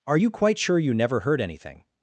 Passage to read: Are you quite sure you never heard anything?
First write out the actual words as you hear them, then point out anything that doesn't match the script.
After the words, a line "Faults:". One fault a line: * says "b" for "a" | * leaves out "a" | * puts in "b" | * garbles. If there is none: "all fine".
Are you quite sure you never heard anything?
Faults:
all fine